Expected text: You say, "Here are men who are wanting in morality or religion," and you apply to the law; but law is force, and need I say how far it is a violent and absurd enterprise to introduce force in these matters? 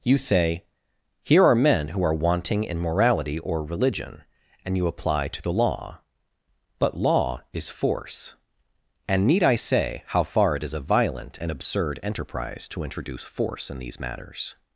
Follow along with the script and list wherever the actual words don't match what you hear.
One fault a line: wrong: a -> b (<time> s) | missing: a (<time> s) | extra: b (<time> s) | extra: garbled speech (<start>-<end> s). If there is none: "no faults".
no faults